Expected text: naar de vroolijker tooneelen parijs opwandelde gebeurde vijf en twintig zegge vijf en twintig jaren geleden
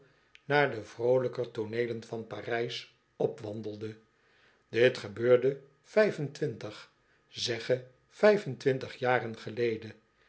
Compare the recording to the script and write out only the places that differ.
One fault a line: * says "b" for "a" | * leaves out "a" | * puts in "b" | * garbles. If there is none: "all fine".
* puts in "van"
* puts in "dit"